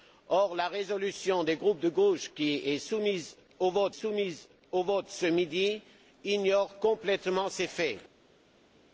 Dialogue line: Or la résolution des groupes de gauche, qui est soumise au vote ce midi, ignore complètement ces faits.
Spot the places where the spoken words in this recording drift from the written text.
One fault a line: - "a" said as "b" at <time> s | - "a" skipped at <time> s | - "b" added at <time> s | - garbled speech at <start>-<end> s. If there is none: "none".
- "soumise au vote" added at 3.9 s